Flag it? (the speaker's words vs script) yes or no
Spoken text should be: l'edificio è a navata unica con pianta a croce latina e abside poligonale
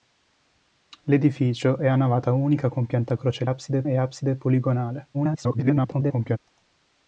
yes